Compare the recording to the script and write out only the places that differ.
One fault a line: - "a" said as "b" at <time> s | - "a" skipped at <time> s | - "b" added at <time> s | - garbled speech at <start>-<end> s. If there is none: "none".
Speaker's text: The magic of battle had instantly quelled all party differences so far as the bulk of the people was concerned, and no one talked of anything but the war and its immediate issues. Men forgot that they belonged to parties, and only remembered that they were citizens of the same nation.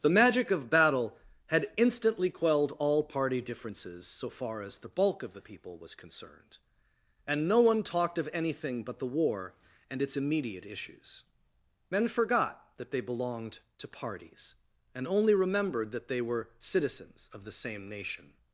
none